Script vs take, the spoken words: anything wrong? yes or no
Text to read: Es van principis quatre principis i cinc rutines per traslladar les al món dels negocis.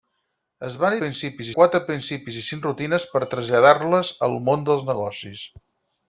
no